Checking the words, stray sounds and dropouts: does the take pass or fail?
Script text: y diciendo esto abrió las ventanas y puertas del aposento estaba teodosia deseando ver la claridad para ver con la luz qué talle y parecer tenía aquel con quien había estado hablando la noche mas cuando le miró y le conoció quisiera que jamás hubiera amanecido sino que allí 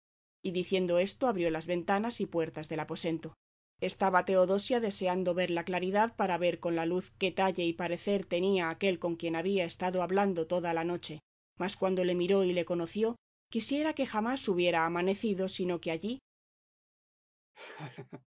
fail